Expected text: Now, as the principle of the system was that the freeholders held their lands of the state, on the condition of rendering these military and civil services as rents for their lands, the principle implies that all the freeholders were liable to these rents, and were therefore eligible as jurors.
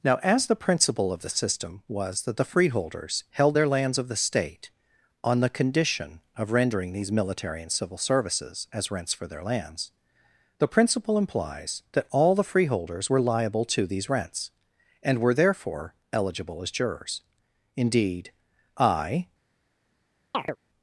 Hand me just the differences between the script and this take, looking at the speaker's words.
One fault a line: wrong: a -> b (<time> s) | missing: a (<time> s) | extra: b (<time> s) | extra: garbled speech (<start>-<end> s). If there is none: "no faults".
extra: Indeed I (17.8 s)